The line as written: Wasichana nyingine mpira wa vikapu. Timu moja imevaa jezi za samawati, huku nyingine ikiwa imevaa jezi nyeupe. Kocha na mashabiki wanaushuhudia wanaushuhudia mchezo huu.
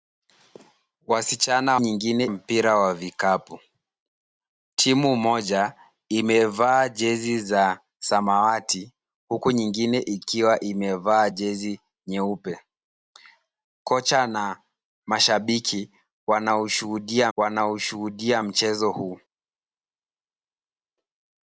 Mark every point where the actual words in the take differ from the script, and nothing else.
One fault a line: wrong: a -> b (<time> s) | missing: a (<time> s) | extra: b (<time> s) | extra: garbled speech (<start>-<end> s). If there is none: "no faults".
no faults